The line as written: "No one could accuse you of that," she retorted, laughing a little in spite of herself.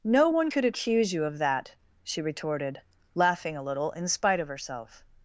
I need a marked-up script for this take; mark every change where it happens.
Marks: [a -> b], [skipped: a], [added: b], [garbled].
"No one could accuse you of that," she retorted, laughing a little in spite of herself.